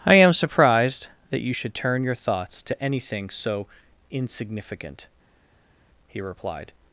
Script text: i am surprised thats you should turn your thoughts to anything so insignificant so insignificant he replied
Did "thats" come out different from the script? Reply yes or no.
yes